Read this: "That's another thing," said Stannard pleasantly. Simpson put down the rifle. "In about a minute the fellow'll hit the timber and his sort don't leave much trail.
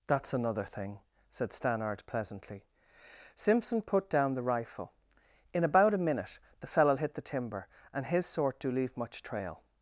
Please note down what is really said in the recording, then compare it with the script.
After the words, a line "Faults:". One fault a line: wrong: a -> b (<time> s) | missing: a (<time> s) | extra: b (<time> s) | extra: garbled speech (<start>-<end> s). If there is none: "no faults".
"That's another thing," said Stannard pleasantly. Simpson put down the rifle. "In about a minute the fellow'll hit the timber and his sort do leave much trail.
Faults:
wrong: don't -> do (8.6 s)